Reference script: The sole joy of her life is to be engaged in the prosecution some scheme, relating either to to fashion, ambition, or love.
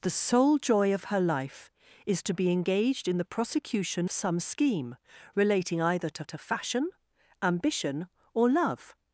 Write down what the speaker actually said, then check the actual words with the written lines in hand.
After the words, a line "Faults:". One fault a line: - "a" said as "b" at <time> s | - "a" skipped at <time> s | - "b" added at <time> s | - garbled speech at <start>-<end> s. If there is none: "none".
The sole joy of her life is to be engaged in the prosecution some scheme, relating either to to fashion, ambition, or love.
Faults:
none